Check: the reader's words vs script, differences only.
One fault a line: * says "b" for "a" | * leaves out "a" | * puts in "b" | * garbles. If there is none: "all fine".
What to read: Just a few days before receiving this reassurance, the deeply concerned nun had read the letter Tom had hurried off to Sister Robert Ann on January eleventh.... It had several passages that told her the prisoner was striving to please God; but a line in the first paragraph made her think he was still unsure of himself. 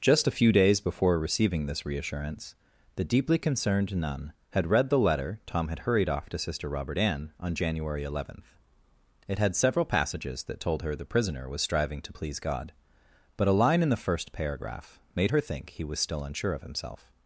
all fine